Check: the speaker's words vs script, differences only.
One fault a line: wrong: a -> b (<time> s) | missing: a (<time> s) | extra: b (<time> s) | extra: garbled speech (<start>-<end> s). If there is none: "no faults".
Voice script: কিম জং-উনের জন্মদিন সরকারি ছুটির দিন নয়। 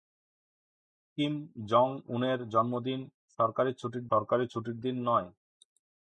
extra: সরকারি ছুটির (4.1 s)